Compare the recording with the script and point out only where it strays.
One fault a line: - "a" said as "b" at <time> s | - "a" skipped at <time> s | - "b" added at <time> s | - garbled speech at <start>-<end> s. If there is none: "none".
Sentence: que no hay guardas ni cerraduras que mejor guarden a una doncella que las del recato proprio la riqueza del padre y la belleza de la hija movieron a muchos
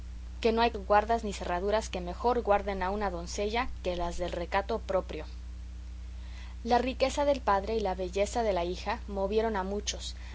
none